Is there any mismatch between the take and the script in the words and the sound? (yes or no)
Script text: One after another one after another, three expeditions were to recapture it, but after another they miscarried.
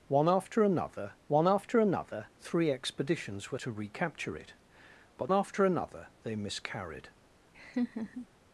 yes